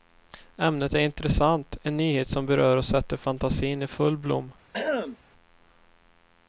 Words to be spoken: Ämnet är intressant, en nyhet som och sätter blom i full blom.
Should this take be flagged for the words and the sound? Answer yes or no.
yes